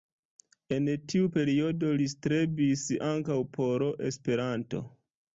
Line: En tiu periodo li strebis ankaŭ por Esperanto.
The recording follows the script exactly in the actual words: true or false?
true